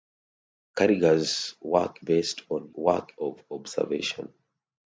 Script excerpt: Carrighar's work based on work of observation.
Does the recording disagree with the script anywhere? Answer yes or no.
no